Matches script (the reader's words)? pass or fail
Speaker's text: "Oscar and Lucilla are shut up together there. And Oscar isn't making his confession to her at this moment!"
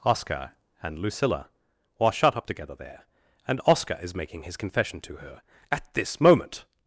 fail